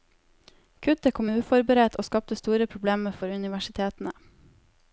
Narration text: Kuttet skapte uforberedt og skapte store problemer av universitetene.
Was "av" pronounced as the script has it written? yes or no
no